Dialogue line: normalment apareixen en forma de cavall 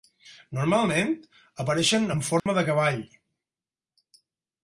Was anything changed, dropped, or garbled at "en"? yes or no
no